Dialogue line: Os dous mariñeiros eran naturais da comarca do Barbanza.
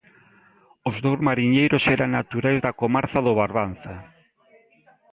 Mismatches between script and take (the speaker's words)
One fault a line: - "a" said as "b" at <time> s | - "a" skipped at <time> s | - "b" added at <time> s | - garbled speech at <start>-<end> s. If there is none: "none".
none